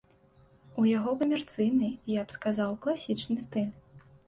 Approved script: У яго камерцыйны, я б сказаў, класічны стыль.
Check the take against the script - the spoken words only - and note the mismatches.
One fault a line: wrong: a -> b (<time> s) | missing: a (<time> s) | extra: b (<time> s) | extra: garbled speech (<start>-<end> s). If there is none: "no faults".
no faults